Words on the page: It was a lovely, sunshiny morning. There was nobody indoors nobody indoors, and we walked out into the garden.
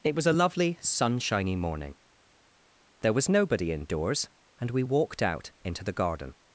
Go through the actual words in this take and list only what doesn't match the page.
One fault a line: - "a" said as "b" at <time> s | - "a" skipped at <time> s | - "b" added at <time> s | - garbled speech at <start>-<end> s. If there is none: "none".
- "nobody indoors" skipped at 4.3 s